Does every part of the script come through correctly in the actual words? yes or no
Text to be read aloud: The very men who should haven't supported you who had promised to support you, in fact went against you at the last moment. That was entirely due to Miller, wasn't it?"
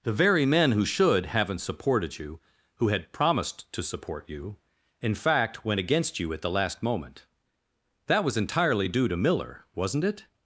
yes